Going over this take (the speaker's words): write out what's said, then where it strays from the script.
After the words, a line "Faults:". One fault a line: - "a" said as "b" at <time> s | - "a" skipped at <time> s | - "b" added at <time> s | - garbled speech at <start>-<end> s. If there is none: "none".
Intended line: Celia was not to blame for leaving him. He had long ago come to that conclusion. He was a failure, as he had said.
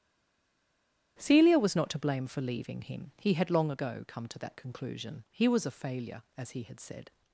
Celia was not to blame for leaving him. He had long ago come to that conclusion. He was a failure, as he had said.
Faults:
none